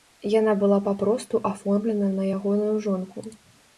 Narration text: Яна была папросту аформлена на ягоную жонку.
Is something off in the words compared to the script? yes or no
no